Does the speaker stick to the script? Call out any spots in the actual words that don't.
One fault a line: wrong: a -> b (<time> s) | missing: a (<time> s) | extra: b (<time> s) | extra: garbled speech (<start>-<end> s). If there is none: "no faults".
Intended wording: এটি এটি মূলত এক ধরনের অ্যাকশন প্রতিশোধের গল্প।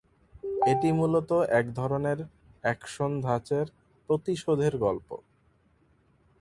missing: এটি (0.9 s)
extra: ধাঁচের (3.2 s)